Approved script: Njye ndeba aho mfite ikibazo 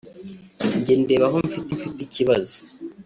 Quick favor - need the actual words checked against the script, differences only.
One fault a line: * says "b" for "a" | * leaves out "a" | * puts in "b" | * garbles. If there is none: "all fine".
* puts in "mfite"